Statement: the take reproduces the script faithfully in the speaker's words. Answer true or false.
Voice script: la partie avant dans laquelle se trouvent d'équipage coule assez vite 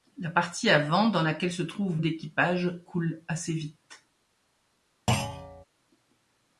true